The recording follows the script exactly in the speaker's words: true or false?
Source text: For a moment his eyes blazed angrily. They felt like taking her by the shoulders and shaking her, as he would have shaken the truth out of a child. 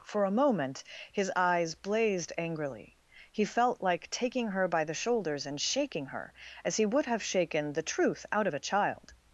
false